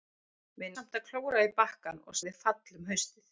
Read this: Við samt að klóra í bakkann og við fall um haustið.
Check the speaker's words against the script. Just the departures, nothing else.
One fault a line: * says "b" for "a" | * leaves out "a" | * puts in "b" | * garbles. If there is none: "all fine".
all fine